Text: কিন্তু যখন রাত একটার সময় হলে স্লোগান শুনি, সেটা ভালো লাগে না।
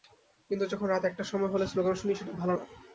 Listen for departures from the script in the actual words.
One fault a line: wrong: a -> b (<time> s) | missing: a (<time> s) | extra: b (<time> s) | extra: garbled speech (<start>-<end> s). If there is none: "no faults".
missing: লাগে (2.5 s)